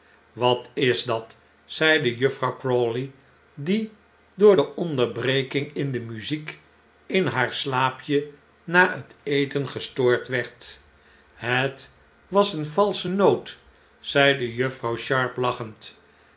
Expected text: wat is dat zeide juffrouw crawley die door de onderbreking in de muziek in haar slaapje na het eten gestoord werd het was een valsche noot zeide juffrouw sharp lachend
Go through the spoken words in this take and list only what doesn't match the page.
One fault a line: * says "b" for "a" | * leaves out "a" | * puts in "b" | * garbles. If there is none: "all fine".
all fine